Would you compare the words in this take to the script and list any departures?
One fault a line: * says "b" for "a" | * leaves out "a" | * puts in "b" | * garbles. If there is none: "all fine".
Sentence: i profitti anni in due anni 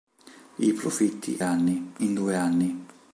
all fine